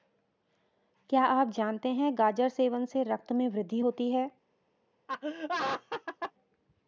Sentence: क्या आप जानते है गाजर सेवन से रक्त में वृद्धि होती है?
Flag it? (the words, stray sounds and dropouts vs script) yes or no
yes